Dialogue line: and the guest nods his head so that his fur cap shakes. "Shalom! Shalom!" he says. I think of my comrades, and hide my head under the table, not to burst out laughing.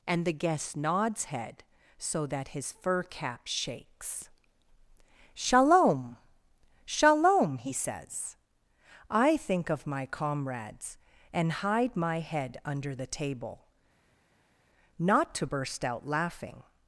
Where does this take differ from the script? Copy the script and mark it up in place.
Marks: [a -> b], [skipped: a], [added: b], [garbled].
and the guest nods [skipped: his] head so that his fur cap shakes. "Shalom! Shalom!" he says. I think of my comrades, and hide my head under the table, not to burst out laughing.